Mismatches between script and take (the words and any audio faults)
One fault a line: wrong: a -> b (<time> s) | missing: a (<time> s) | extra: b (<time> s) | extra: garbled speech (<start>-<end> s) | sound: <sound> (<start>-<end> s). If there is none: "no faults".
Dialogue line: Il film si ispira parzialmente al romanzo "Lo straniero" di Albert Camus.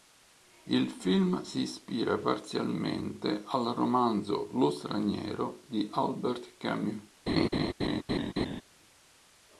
sound: laugh (7.3-8.6 s)